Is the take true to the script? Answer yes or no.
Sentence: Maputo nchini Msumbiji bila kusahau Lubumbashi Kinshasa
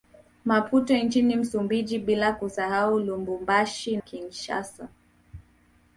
yes